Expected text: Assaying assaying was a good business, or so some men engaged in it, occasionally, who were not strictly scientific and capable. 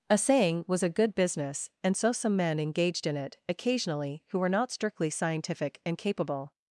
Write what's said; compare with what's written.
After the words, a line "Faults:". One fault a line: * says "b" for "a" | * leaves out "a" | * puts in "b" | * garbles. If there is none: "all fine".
Assaying was a good business, and so some men engaged in it, occasionally, who were not strictly scientific and capable.
Faults:
* leaves out "assaying"
* says "and" for "or"